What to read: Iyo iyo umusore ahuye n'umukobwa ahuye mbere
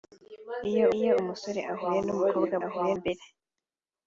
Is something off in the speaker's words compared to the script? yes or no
no